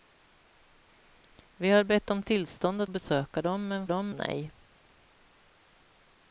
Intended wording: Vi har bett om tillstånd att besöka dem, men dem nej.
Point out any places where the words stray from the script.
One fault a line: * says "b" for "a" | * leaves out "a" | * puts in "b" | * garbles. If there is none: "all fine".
all fine